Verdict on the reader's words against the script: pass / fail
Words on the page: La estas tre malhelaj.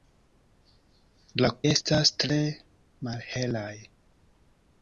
pass